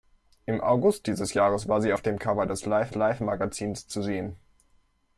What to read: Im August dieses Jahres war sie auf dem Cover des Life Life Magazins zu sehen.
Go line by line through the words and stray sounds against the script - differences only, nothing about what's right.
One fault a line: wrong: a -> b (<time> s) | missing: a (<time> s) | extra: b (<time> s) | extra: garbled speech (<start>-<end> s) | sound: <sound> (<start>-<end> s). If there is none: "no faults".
no faults